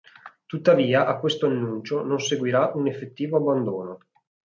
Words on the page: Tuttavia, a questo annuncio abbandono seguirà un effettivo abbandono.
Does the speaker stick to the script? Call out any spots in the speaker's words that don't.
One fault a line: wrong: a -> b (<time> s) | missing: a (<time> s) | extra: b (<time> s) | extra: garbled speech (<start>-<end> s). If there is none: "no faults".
wrong: abbandono -> non (2.0 s)